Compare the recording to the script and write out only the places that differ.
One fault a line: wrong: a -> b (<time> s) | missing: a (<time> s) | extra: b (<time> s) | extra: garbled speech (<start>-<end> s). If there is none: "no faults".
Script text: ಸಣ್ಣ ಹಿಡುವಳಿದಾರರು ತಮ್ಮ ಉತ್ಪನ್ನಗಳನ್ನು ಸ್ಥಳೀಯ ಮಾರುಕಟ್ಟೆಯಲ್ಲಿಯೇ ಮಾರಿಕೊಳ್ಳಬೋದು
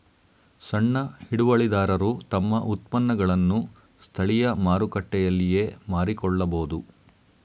no faults